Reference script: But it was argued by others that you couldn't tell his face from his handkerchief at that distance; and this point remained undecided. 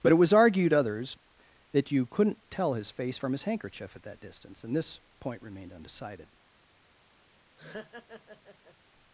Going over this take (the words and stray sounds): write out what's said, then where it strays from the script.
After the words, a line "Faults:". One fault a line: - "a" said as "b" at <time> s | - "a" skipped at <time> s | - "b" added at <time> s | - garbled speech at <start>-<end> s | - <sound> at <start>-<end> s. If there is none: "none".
But it was argued others that you couldn't tell his face from his handkerchief at that distance; and this point remained undecided.
Faults:
- "by" skipped at 0.7 s
- laugh at 7.6-8.8 s